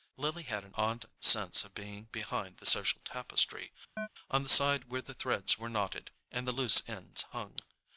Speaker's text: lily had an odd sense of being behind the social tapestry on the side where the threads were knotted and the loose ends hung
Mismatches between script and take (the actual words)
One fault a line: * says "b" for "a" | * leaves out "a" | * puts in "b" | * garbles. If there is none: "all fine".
all fine